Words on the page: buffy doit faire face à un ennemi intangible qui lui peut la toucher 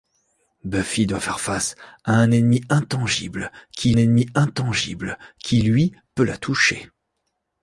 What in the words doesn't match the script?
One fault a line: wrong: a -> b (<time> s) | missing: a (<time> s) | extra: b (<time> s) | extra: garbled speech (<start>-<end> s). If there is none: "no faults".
extra: ennemi intangible qui (4.0 s)